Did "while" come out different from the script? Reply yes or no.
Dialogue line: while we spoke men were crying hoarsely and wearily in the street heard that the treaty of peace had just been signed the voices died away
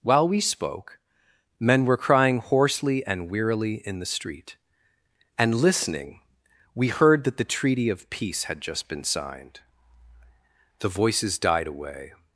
no